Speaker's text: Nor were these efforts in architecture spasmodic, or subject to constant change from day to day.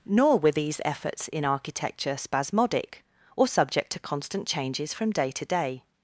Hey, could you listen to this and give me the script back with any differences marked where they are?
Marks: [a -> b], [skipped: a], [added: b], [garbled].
Nor were these efforts in architecture spasmodic, or subject to constant [change -> changes] from day to day.